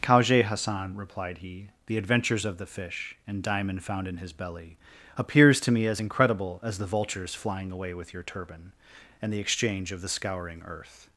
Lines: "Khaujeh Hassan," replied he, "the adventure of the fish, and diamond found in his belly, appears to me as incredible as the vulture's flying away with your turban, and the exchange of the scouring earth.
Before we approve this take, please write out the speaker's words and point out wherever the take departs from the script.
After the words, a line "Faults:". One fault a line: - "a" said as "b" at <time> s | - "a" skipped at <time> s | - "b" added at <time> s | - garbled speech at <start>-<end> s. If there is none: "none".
"Khaujeh Hassan," replied he, "the adventures of the fish, and diamond found in his belly, appears to me as incredible as the vulture's flying away with your turban, and the exchange of the scouring earth.
Faults:
- "adventure" said as "adventures" at 2.0 s